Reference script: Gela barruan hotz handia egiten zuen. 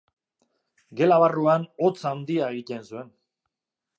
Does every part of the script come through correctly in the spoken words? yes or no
yes